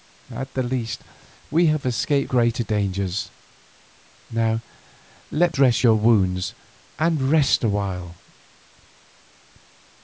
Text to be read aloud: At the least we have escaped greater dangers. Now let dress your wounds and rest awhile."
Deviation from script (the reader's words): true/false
false